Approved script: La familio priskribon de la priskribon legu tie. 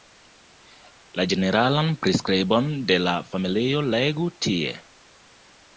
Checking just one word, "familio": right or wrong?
wrong